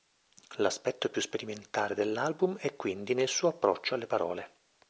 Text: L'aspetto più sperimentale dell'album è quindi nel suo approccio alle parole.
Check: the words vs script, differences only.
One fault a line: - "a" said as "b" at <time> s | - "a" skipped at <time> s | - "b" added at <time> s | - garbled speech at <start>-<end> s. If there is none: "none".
none